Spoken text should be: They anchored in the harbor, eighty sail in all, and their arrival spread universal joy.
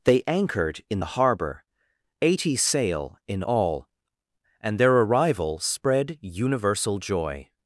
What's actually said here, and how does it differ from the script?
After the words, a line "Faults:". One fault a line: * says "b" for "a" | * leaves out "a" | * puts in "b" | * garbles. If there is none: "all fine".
They anchored in the harbor, eighty sail in all, and their arrival spread universal joy.
Faults:
all fine